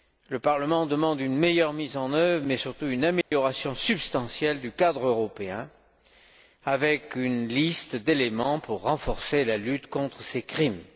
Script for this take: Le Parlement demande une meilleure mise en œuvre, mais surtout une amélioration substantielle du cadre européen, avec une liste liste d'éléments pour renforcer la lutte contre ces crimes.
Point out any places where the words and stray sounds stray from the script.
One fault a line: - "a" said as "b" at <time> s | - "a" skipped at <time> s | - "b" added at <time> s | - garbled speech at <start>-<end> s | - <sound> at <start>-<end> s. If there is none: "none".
- dropout at 3.2-3.3 s
- "liste" skipped at 8.0 s